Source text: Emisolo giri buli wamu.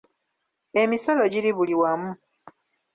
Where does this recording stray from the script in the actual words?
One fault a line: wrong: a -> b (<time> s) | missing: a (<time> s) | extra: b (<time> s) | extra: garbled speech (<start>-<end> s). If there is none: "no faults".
no faults